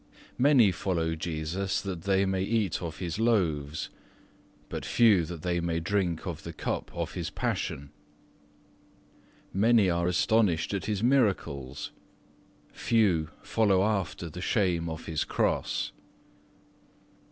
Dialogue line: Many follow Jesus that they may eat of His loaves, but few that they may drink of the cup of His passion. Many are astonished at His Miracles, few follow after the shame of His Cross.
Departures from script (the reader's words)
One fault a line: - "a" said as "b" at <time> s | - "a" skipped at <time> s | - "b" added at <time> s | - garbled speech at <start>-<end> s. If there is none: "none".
none